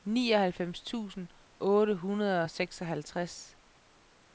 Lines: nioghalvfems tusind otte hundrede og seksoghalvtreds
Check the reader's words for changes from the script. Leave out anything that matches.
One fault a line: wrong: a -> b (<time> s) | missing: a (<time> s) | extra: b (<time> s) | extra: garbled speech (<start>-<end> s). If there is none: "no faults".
no faults